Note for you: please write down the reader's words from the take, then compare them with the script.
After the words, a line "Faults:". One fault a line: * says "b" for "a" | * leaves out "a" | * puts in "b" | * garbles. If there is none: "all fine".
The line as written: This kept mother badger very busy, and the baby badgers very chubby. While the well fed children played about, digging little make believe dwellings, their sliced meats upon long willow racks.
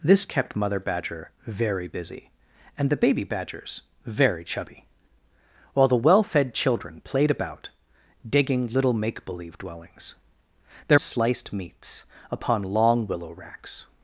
This kept mother badger very busy, and the baby badgers very chubby. While the well fed children played about, digging little make believe dwellings, their sliced meats upon long willow racks.
Faults:
all fine